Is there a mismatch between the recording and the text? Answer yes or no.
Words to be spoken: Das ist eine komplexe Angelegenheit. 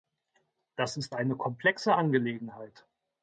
no